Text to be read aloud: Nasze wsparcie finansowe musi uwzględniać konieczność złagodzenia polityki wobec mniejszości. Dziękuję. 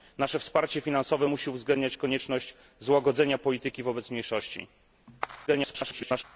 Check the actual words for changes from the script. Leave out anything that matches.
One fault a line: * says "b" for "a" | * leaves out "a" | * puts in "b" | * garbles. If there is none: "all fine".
* garbles